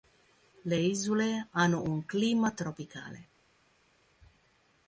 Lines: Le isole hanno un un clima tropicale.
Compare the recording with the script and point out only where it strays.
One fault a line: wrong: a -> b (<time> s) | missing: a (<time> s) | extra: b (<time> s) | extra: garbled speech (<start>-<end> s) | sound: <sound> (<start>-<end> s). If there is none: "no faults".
missing: un (2.0 s)